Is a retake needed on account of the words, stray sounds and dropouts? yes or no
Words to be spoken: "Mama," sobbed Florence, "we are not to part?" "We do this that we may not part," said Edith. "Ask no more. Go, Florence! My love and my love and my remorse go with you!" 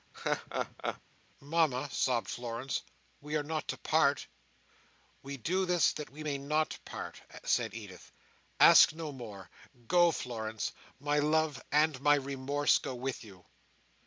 yes